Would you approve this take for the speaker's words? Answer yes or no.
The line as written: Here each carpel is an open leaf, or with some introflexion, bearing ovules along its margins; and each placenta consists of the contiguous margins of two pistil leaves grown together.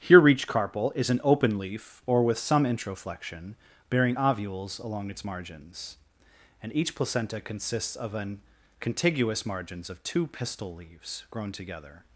no